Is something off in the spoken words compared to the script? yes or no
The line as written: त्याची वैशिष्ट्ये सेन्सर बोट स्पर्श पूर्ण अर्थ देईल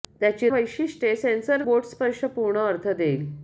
no